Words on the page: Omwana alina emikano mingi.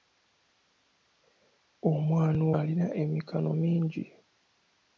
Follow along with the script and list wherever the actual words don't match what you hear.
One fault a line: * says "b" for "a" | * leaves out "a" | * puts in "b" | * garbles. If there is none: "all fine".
all fine